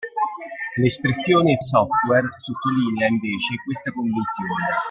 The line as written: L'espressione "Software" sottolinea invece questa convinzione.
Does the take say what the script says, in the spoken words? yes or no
yes